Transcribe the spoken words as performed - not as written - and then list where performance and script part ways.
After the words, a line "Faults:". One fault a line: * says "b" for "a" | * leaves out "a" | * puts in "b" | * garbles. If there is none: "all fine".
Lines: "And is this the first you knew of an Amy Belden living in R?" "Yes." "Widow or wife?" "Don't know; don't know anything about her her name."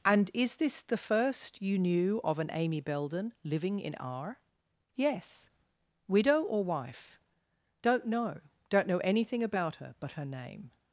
"And is this the first you knew of an Amy Belden living in R?" "Yes." "Widow or wife?" "Don't know; don't know anything about her but her name."
Faults:
* puts in "but"